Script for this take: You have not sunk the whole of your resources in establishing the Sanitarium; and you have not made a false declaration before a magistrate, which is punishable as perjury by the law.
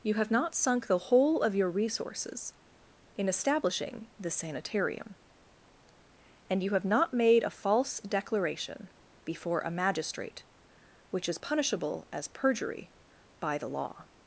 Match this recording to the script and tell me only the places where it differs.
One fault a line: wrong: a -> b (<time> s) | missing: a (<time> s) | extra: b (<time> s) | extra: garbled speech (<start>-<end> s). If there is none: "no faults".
no faults